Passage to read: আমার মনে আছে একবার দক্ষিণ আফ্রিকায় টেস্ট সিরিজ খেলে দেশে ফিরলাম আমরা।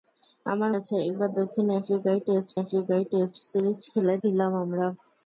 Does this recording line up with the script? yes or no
no